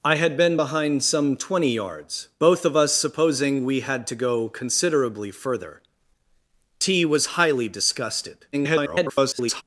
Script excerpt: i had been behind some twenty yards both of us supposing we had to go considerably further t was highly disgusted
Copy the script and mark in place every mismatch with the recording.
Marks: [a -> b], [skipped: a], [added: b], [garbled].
i had been behind some twenty yards both of us supposing we had to go considerably further t was highly disgusted [garbled]